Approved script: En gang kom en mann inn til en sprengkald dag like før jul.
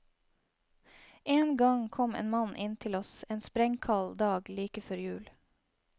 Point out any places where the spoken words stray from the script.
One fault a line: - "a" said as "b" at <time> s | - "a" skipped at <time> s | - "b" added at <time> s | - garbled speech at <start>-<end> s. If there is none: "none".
- "oss" added at 3.0 s